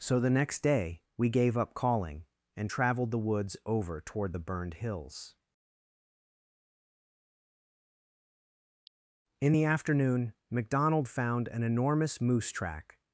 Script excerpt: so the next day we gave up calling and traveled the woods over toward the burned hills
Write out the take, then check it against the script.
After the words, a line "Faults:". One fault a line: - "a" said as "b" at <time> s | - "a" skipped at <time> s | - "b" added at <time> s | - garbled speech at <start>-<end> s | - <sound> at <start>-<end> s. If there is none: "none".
so the next day we gave up calling and traveled the woods over toward the burned hills in the afternoon mcdonald found an enormous moose track
Faults:
- "in the afternoon mcdonald found an enormous moose track" added at 9.4 s